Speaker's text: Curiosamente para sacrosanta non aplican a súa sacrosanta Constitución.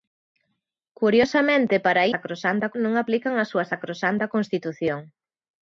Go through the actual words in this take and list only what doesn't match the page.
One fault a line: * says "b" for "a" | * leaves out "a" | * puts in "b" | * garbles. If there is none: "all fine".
all fine